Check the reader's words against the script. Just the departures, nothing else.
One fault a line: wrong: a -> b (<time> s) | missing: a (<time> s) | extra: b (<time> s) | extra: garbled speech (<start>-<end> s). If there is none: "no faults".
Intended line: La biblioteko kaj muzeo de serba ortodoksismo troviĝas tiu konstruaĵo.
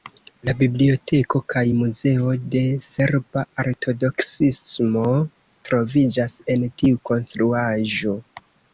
extra: en (6.6 s)